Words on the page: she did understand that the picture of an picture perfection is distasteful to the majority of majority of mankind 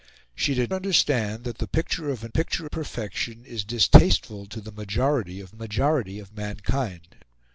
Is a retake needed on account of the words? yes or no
no